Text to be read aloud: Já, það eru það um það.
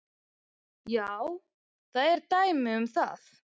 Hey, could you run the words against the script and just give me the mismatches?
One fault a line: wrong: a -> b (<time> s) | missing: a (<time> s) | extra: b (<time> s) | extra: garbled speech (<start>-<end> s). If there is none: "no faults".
wrong: það -> dæmi (2.3 s)